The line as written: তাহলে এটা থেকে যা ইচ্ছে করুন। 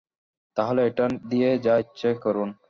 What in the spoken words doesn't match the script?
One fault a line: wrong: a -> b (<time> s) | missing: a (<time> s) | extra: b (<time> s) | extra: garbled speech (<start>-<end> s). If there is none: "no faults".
wrong: থেকে -> দিয়ে (1.3 s)